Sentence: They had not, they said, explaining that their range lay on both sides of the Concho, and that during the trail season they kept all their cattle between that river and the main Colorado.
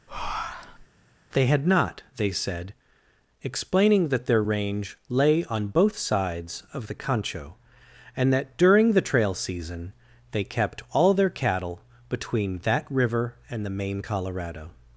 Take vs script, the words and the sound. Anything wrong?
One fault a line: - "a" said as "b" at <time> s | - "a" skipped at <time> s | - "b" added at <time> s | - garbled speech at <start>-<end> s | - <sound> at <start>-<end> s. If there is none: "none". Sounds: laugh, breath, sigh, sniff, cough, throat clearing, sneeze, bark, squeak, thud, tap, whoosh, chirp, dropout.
- breath at 0.1-0.9 s